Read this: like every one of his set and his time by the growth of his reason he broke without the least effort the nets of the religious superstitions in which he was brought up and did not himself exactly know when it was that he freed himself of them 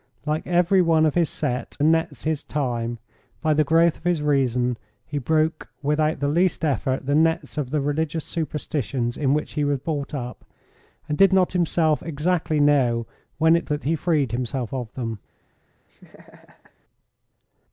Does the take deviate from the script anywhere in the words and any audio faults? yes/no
yes